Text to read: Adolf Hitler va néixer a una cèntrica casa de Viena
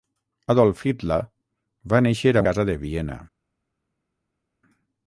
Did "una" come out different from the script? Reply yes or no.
yes